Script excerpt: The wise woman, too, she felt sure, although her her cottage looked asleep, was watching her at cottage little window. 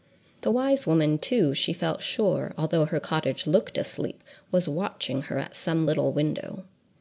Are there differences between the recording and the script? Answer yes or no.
yes